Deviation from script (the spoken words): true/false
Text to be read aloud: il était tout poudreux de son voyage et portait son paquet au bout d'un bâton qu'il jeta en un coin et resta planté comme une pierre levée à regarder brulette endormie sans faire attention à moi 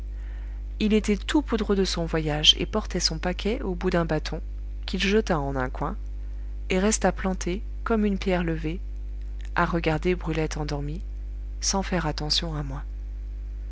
false